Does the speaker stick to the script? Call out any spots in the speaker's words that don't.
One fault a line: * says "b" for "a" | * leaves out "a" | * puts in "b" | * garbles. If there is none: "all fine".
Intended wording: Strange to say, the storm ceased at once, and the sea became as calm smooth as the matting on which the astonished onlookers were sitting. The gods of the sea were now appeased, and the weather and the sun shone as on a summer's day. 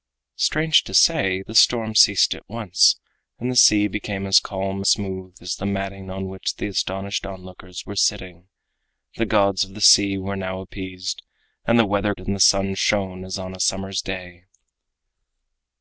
all fine